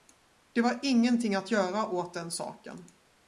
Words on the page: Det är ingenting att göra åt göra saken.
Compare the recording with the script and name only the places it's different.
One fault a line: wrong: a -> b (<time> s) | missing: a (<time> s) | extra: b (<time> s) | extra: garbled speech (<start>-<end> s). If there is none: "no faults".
wrong: är -> var (0.6 s)
wrong: göra -> den (2.1 s)